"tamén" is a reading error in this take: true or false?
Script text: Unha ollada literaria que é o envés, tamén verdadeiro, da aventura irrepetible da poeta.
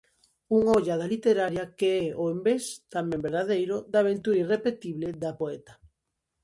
false